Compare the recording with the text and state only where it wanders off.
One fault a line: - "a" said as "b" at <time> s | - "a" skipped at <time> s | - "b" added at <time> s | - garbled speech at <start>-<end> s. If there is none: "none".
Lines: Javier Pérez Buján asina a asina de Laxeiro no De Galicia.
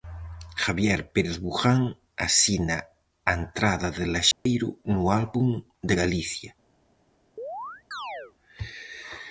- "asina" said as "entrada" at 3.4 s
- "Álbum" added at 5.2 s